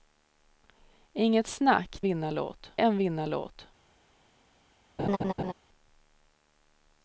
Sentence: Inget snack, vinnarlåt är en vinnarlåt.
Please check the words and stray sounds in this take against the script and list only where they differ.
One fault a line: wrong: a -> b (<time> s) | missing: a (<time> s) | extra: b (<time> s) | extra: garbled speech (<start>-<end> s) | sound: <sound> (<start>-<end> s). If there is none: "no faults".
sound: laugh (5.0-5.5 s)